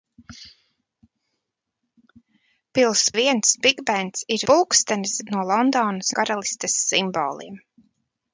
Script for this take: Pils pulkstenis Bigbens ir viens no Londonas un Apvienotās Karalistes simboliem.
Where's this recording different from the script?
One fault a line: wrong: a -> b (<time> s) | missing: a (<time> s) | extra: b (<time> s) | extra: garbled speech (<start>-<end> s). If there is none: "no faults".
wrong: pulkstenis -> viens (3.2 s)
wrong: viens -> pulkstenis (4.5 s)
missing: un Apvienotās (6.1 s)